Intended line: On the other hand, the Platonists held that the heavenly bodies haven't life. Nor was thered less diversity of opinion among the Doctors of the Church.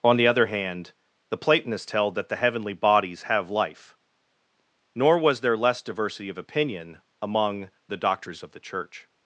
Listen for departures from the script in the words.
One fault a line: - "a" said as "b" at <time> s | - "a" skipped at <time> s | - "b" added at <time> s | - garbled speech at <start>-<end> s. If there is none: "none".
- "haven't" said as "have" at 3.2 s
- "thered" said as "there" at 5.4 s